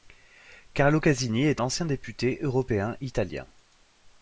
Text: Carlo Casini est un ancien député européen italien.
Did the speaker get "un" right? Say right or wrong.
wrong